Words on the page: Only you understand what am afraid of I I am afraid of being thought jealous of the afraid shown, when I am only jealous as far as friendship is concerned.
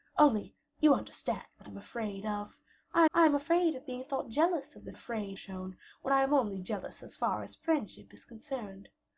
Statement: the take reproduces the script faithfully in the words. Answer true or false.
true